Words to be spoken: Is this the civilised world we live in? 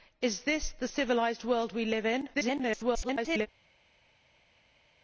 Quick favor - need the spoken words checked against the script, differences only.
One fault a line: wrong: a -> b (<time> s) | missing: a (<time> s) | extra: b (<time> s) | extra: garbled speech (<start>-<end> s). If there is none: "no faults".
extra: garbled speech (2.3-3.5 s)